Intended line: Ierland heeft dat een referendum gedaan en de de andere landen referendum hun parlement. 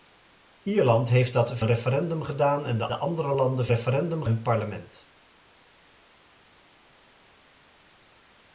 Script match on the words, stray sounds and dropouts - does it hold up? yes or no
yes